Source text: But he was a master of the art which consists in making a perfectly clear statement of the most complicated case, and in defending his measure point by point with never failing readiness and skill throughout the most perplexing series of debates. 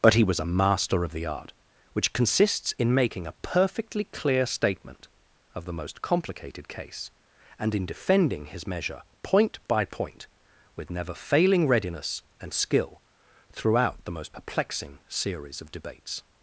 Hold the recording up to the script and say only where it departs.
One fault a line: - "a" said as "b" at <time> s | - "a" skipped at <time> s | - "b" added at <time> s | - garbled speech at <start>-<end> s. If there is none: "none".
none